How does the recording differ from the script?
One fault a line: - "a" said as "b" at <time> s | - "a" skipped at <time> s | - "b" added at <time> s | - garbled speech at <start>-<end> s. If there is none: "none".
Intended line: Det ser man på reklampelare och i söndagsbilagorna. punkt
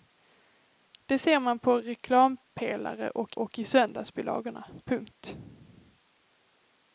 - "och" added at 3.3 s